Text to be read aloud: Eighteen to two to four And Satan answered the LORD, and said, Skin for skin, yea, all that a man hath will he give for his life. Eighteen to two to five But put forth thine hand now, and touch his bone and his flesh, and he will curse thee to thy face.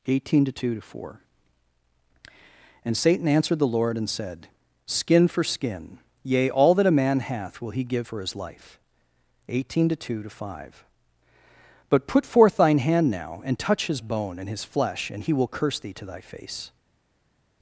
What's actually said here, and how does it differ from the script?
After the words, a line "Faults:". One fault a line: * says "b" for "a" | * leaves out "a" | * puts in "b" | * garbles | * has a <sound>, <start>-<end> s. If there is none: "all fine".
Eighteen to two to four And Satan answered the LORD, and said, Skin for skin, yea, all that a man hath will he give for his life. Eighteen to two to five But put forth thine hand now, and touch his bone and his flesh, and he will curse thee to thy face.
Faults:
all fine